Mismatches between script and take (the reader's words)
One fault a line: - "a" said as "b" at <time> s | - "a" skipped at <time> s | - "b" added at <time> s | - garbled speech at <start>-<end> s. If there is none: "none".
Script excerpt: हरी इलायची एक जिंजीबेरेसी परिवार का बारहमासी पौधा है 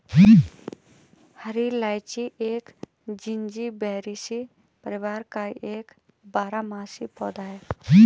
- "एक" added at 5.5 s